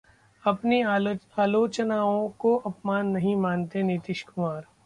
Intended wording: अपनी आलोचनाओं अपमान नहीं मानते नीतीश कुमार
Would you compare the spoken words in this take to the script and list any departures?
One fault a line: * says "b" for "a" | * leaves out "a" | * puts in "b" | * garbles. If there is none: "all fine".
* puts in "को"